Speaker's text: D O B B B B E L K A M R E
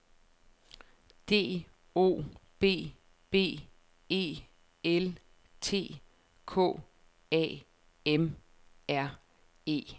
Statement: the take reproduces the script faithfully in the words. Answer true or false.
false